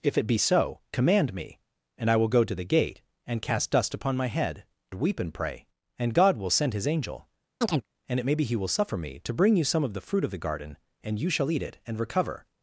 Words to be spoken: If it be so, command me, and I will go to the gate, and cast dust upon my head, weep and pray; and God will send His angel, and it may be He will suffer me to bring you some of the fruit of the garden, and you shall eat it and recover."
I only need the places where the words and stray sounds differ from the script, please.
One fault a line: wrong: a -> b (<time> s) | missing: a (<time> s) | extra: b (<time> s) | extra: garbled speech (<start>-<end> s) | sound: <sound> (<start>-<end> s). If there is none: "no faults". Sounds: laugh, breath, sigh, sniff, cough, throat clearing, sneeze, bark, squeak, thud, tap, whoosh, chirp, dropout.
sound: chirp (7.6-7.9 s)